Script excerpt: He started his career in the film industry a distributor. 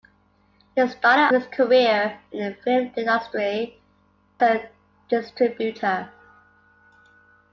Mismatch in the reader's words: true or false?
false